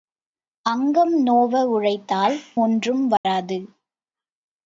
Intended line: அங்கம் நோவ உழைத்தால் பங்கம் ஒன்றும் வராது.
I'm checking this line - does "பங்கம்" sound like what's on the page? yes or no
no